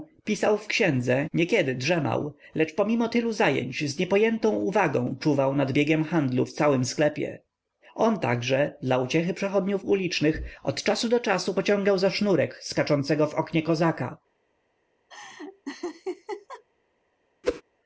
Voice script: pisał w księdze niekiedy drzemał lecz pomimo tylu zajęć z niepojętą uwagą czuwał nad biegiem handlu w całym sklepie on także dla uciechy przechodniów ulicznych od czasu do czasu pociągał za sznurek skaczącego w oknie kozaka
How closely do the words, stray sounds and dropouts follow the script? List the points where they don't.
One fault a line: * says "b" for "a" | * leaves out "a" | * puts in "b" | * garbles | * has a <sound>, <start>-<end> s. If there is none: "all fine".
* has a laugh, 15.1-16.6 s
* has a whoosh, 17.4-17.6 s